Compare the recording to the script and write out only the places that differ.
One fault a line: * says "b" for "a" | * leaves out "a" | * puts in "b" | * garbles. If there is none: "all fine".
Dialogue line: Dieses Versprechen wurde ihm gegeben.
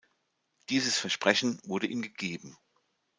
all fine